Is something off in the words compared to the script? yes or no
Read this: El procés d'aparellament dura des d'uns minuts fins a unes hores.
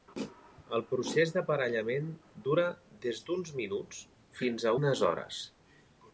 no